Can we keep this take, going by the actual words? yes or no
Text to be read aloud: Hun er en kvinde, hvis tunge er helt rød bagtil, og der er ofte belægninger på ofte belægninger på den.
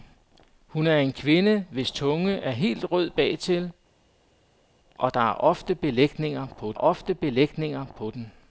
yes